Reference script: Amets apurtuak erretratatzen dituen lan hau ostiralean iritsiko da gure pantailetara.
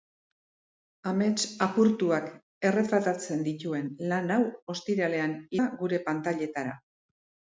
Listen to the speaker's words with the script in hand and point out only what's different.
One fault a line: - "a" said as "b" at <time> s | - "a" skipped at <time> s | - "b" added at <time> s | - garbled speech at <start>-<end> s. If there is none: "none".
- "iritsiko" skipped at 5.4 s